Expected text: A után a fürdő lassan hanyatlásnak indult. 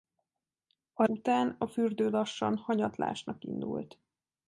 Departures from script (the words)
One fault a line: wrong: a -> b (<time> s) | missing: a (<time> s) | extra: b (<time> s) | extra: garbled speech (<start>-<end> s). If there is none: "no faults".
no faults